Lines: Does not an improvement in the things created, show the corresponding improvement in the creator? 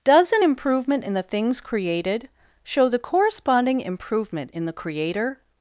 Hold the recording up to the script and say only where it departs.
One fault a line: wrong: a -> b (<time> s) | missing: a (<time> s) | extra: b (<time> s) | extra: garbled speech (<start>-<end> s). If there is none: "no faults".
missing: not (0.3 s)